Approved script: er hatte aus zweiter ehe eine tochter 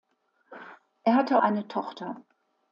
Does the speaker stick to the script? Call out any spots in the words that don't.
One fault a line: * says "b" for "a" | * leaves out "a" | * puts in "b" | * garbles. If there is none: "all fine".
* leaves out "aus zweiter ehe"